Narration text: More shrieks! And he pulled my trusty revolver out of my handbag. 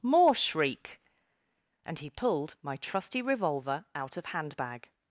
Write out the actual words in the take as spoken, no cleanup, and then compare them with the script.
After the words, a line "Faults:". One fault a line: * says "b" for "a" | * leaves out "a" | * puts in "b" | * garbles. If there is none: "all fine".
More shriek! And he pulled my trusty revolver out of handbag.
Faults:
* says "shriek" for "shrieks"
* leaves out "my"